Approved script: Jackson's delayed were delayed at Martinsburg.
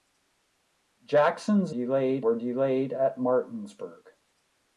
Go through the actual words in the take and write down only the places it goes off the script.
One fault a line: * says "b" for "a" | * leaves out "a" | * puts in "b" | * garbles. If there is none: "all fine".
all fine